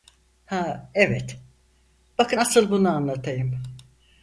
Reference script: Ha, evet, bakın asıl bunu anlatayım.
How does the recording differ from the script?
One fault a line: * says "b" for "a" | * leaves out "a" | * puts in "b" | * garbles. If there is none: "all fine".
all fine